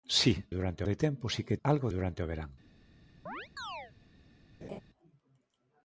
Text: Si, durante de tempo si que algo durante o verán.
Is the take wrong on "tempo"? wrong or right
right